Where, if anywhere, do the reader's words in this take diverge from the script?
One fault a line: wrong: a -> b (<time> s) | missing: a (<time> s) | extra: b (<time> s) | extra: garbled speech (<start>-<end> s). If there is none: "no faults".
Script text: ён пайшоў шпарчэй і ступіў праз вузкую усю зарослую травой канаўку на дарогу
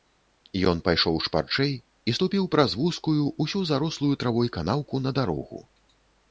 no faults